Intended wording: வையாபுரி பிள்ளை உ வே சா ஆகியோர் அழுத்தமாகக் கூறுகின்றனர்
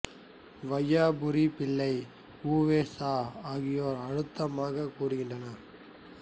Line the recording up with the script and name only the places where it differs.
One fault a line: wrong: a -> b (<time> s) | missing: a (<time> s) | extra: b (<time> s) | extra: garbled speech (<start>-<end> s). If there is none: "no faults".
no faults